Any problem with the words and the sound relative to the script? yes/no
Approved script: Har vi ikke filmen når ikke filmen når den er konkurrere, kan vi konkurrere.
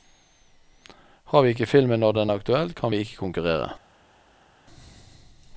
yes